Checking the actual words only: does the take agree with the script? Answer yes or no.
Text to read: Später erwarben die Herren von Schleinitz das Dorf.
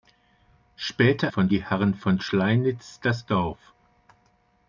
no